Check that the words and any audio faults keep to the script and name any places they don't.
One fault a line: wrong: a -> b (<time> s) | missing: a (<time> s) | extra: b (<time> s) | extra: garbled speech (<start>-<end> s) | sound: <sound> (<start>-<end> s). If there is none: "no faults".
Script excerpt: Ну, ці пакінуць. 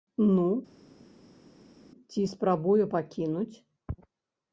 extra: спрабуе (2.2 s)